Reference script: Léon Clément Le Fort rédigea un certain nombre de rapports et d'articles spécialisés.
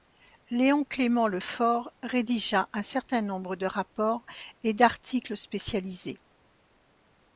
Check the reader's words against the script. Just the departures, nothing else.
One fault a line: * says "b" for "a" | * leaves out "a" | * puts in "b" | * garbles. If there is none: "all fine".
all fine